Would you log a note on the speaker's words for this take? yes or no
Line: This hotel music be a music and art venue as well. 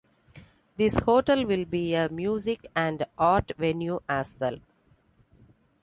yes